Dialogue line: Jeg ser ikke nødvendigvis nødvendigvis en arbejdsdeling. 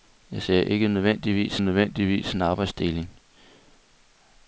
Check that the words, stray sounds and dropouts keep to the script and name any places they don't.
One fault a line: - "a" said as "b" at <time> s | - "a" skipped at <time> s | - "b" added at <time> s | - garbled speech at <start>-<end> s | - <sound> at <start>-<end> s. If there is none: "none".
none